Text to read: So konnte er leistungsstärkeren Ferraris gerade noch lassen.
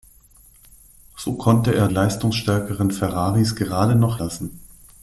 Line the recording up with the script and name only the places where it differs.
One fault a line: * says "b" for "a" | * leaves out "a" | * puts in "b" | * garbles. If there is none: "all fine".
all fine